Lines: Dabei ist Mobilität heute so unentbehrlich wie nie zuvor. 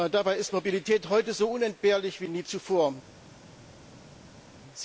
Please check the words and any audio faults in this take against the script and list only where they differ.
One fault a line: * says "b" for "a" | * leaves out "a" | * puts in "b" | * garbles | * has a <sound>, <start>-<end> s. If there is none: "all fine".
all fine